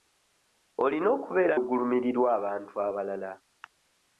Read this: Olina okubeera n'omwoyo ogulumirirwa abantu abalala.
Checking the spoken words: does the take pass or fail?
fail